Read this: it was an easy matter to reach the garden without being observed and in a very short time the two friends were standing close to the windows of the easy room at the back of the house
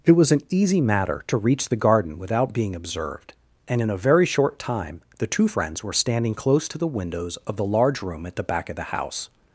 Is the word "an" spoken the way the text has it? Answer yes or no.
yes